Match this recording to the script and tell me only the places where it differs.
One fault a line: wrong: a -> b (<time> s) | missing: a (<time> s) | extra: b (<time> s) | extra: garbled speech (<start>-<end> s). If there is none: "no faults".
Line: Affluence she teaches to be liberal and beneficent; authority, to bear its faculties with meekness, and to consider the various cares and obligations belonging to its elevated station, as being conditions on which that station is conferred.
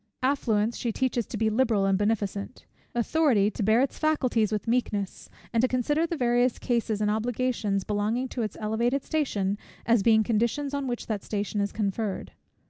no faults